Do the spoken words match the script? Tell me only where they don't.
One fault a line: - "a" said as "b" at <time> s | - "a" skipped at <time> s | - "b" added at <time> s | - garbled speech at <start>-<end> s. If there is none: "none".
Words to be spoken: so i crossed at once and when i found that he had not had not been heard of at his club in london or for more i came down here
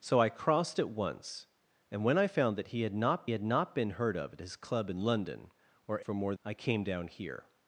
none